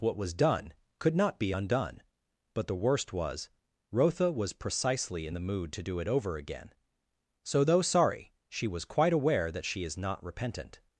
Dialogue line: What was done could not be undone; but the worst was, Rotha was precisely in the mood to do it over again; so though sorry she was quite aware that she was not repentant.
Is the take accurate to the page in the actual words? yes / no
no